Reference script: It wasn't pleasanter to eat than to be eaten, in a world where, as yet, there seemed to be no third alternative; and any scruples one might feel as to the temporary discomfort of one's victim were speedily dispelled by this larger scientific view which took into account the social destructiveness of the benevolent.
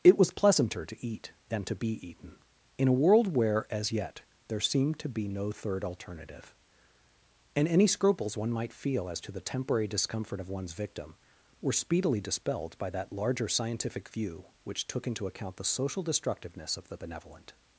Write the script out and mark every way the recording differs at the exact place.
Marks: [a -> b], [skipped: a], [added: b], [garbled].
It [wasn't -> was] pleasanter to eat than to be eaten, in a world where, as yet, there seemed to be no third alternative; and any scruples one might feel as to the temporary discomfort of one's victim were speedily dispelled by [this -> that] larger scientific view which took into account the social destructiveness of the benevolent.